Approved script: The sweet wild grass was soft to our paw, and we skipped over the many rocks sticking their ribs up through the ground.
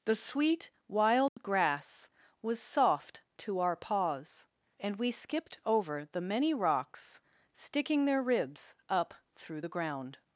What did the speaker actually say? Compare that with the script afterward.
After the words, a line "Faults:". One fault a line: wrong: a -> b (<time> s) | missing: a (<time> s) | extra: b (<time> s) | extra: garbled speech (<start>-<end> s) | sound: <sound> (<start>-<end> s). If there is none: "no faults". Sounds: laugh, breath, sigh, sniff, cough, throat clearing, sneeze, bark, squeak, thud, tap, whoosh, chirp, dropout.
The sweet wild grass was soft to our paws, and we skipped over the many rocks sticking their ribs up through the ground.
Faults:
sound: dropout (1.3-1.4 s)
wrong: paw -> paws (3.7 s)